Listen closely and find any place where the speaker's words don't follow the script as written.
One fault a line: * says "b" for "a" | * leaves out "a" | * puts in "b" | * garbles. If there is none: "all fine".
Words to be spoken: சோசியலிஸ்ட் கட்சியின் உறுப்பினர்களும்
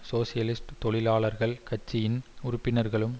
* puts in "தொழிலாளர்கள்"